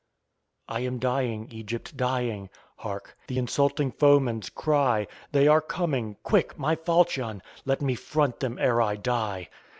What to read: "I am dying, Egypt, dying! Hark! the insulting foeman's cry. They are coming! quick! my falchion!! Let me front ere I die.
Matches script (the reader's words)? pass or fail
fail